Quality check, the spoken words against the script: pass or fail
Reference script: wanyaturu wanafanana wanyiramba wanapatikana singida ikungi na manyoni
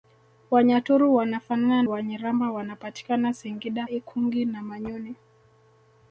pass